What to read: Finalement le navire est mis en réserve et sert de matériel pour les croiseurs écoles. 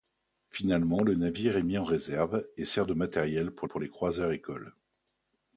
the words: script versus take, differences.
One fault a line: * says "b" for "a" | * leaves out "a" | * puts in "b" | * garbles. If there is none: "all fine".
* puts in "pour"